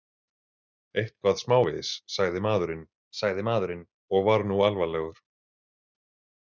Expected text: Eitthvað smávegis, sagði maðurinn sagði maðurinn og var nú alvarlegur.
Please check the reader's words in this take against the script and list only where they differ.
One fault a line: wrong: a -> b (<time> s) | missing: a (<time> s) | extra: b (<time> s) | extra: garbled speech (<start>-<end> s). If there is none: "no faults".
no faults